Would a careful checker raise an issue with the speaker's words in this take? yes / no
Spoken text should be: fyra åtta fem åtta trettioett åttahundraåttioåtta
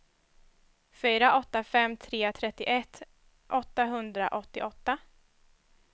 yes